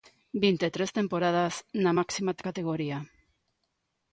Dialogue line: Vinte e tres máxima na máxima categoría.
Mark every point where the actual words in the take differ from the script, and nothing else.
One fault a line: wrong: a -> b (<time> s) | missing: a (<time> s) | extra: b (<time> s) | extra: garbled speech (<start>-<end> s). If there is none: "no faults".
wrong: máxima -> temporadas (1.0 s)